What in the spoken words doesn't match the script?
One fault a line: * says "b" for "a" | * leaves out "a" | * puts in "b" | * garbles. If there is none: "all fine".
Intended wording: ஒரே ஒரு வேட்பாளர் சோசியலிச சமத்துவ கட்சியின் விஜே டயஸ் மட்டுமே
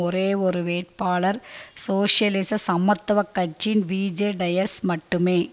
all fine